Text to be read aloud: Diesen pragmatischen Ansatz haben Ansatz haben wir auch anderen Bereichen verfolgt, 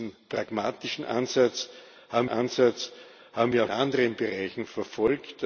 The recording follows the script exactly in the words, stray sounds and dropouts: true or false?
true